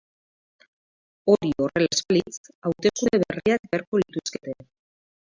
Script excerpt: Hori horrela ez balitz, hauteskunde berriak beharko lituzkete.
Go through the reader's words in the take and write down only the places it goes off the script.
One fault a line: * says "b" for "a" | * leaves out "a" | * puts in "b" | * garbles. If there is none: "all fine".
all fine